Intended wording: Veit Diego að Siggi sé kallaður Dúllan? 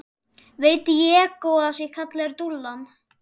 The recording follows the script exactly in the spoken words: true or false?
false